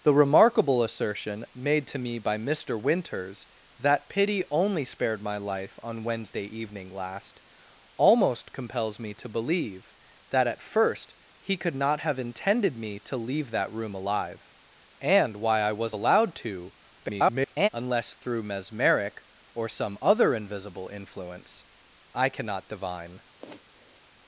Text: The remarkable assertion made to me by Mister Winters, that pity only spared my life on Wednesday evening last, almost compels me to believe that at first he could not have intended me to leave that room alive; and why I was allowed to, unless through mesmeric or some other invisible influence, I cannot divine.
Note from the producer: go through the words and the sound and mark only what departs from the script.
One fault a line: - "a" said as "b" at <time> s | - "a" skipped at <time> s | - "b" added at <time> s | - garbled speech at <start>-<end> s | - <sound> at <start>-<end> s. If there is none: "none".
- garbled speech at 17.0-17.7 s
- sniff at 23.4-24.0 s